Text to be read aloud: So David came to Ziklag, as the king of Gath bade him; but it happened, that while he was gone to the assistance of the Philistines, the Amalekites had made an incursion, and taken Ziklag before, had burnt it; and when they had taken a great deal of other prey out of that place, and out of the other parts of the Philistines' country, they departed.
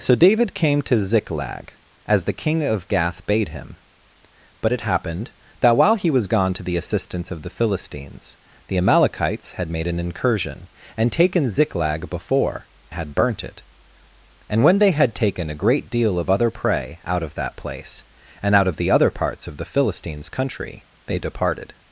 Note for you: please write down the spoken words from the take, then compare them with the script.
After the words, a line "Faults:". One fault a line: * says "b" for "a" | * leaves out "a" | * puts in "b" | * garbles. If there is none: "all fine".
So David came to Ziklag, as the king of Gath bade him; but it happened, that while he was gone to the assistance of the Philistines, the Amalekites had made an incursion, and taken Ziklag before, had burnt it; and when they had taken a great deal of other prey out of that place, and out of the other parts of the Philistines' country, they departed.
Faults:
all fine